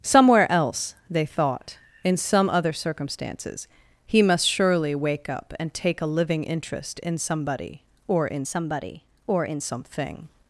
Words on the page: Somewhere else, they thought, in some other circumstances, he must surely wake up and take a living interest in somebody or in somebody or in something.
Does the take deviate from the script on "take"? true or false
false